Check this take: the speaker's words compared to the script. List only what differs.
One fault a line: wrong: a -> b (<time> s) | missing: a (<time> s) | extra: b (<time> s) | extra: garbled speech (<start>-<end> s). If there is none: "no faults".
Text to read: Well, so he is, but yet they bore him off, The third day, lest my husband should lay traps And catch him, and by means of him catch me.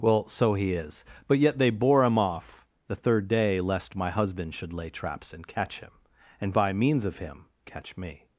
no faults